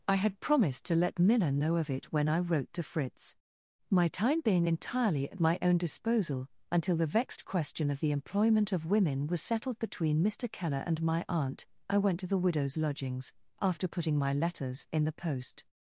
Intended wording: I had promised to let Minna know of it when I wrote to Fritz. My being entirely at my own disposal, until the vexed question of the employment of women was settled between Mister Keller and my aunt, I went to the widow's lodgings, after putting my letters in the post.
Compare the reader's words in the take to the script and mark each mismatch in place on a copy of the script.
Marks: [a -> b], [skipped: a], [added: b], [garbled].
I had promised to let Minna know of it when I wrote to Fritz. My [added: time] being entirely at my own disposal, until the vexed question of the employment of women was settled between Mister Keller and my aunt, I went to the widow's lodgings, after putting my letters in the post.